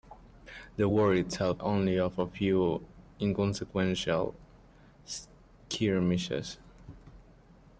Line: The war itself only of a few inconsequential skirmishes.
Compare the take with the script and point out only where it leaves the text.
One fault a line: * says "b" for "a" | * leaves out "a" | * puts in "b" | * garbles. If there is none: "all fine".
all fine